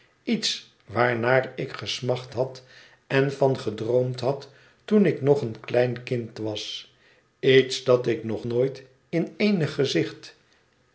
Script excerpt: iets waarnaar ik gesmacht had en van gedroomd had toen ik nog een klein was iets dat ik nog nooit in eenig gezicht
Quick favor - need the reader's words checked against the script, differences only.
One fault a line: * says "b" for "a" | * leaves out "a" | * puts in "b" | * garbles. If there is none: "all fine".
* puts in "kind"